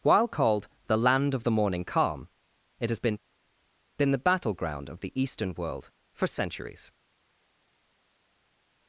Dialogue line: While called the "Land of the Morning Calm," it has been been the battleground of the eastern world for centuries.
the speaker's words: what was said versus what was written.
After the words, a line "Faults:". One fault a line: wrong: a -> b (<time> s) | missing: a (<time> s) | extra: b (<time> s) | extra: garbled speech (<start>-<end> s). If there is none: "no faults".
While called the "Land of the Morning Calm," it has been been the battleground of the eastern world for centuries.
Faults:
no faults